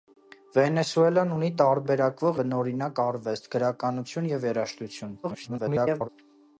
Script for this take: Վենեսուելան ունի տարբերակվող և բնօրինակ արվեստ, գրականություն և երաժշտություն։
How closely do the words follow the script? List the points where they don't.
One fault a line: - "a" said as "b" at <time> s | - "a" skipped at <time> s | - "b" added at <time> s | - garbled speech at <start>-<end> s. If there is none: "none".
- "և" skipped at 2.4 s
- garbled speech at 5.2-6.1 s